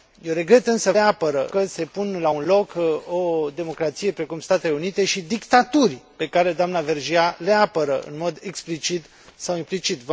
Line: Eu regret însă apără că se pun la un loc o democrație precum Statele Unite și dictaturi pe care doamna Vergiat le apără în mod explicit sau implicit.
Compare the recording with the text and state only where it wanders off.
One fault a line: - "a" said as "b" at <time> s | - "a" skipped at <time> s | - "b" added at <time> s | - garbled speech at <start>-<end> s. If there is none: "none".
none